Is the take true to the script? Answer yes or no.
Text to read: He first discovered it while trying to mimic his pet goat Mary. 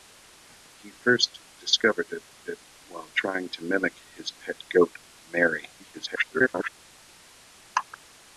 no